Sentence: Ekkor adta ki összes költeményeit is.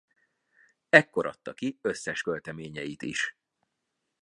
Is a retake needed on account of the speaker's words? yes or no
no